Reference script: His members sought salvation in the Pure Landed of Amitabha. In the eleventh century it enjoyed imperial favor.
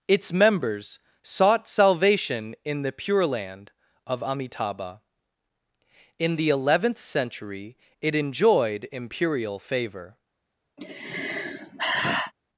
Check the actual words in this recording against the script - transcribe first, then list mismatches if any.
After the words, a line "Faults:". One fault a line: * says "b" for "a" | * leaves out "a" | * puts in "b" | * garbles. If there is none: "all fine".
Its members sought salvation in the Pure Land of Amitabha. In the eleventh century it enjoyed imperial favor.
Faults:
* says "Its" for "His"
* says "Land" for "Landed"